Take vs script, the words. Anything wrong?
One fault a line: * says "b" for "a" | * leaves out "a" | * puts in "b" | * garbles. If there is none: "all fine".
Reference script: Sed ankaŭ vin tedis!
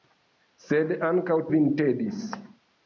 all fine